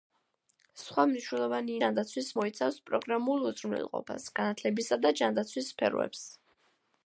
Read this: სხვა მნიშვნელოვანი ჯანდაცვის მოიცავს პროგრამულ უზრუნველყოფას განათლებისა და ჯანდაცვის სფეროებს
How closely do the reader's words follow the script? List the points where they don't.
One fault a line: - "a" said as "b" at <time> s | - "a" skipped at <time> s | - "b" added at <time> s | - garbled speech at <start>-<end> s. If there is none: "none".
none